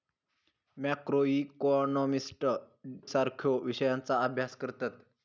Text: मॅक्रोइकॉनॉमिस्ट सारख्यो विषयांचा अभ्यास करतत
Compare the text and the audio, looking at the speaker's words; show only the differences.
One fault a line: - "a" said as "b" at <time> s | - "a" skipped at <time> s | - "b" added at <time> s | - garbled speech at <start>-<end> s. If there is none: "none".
none